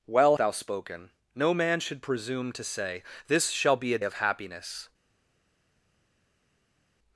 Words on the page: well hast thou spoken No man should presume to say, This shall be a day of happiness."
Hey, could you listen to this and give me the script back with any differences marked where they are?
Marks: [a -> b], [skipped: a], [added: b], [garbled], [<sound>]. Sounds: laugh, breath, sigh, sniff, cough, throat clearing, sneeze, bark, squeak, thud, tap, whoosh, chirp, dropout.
well [skipped: hast] thou spoken No man should presume to say, This shall be a [skipped: day] of happiness."